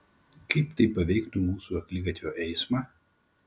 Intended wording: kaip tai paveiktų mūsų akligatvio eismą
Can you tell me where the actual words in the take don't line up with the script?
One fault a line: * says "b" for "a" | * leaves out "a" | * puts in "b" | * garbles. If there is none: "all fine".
all fine